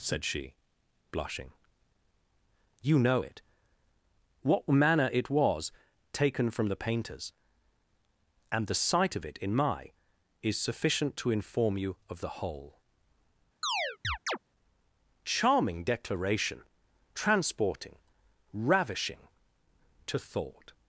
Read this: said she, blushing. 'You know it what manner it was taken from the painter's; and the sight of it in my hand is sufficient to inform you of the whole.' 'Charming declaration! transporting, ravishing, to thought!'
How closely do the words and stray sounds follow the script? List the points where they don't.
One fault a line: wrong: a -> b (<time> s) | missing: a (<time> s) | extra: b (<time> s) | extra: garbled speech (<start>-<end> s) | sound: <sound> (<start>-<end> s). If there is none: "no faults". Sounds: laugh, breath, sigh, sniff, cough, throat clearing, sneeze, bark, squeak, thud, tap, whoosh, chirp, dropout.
missing: hand (9.9 s)
sound: chirp (13.6-14.4 s)